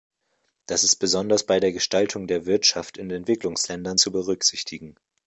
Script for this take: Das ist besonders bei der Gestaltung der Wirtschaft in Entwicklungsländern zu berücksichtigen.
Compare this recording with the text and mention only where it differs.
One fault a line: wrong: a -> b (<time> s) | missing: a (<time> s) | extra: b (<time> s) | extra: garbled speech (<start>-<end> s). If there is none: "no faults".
no faults